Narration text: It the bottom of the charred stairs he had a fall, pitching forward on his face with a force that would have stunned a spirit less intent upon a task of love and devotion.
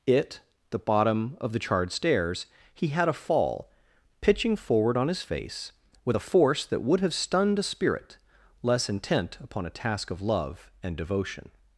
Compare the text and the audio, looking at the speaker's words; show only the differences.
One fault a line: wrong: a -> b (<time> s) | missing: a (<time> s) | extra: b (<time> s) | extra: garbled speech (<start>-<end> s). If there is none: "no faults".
no faults